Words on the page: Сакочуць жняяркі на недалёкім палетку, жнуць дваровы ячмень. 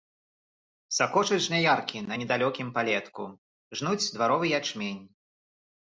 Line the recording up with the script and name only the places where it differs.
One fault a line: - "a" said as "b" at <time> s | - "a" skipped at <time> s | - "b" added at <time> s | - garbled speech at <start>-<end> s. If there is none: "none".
none